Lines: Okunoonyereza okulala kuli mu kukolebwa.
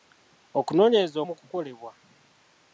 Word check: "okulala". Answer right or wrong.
wrong